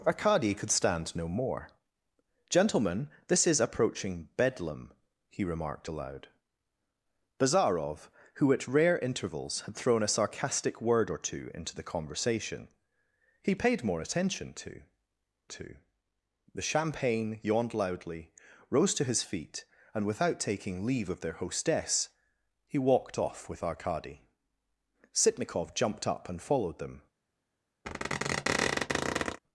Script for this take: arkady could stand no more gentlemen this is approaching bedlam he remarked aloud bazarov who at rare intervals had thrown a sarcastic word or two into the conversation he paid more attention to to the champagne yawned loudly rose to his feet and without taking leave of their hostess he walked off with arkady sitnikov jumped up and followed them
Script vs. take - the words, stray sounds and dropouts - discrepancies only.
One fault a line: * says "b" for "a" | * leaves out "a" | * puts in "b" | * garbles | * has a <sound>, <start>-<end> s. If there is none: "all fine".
* has a squeak, 27.8-29.4 s